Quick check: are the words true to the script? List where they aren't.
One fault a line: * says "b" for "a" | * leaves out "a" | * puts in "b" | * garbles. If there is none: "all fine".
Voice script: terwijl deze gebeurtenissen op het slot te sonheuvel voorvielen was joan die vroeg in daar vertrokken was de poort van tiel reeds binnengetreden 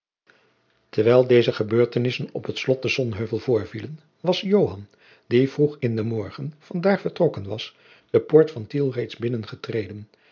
* puts in "den morgen van"